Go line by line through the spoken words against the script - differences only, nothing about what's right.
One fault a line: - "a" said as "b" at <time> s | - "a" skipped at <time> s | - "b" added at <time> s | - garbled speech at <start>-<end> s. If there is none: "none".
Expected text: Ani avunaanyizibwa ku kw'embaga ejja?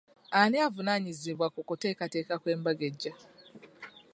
- "kuteekateeka" added at 1.7 s